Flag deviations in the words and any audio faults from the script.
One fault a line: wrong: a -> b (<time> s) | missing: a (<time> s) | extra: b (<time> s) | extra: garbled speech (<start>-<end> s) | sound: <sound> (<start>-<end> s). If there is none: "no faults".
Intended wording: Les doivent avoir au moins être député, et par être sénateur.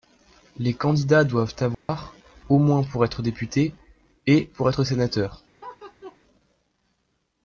extra: candidats (0.7 s)
sound: dropout (1.7-1.9 s)
extra: pour (2.8 s)
wrong: par -> pour (4.5 s)
sound: laugh (5.6-6.2 s)